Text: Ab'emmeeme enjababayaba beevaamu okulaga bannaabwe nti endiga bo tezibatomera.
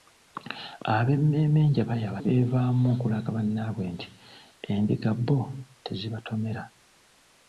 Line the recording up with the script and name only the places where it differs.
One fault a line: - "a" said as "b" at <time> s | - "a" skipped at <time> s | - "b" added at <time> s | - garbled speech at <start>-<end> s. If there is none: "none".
none